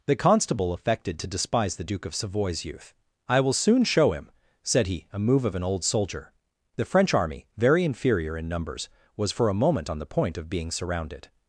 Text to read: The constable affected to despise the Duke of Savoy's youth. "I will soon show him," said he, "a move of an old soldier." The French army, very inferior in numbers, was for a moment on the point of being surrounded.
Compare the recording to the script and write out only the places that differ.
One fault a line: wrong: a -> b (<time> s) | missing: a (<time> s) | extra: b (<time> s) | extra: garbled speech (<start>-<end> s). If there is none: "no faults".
no faults